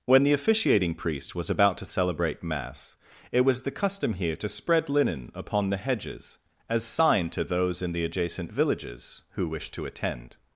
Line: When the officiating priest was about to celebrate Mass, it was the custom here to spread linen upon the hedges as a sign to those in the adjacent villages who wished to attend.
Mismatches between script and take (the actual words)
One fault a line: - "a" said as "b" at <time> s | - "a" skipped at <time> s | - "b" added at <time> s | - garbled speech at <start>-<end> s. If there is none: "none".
- "a" skipped at 6.8 s